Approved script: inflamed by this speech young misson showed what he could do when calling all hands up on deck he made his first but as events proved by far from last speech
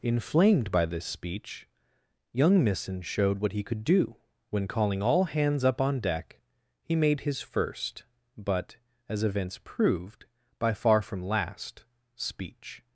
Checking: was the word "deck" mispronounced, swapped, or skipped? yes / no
no